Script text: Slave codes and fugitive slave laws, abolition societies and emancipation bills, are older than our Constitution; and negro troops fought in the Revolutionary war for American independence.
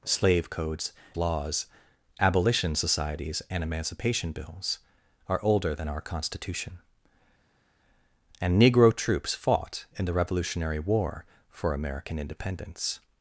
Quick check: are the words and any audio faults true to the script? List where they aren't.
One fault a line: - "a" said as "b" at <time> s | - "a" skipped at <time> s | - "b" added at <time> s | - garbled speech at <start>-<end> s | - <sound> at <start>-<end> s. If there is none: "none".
- "and fugitive slave" skipped at 0.9 s